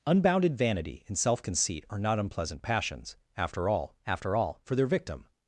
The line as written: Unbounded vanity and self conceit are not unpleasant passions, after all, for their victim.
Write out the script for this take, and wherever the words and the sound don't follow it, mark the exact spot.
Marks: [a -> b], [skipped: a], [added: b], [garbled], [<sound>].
Unbounded vanity and self conceit are not unpleasant passions, after all, [added: after all] for their victim.